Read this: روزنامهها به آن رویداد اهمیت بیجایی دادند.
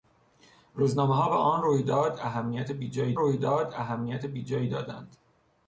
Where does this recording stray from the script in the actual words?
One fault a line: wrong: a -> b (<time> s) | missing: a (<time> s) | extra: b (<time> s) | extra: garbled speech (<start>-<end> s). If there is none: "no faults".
extra: رویداد اهمیت بیجایی (3.2 s)